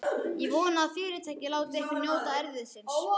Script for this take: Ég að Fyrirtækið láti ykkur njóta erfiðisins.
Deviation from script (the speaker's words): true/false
true